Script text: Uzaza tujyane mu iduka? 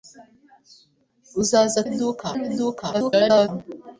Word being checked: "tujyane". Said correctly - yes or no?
no